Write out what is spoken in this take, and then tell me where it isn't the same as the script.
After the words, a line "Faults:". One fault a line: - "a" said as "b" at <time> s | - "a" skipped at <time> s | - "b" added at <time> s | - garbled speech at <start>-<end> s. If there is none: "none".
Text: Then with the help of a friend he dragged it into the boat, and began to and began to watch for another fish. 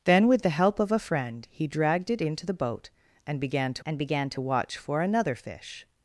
Then with the help of a friend he dragged it into the boat, and began to and began to watch for another fish.
Faults:
none